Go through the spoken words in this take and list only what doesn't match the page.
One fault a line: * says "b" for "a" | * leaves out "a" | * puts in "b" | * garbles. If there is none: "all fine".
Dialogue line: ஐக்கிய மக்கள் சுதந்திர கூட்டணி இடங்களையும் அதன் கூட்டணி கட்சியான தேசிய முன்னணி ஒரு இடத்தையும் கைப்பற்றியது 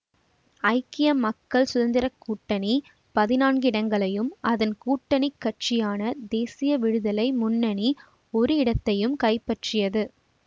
* puts in "பதினான்கு"
* puts in "விடுதலை"